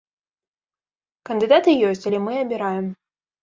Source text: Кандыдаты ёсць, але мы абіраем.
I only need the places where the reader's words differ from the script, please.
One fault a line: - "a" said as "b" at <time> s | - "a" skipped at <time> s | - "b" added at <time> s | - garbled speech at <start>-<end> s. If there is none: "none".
none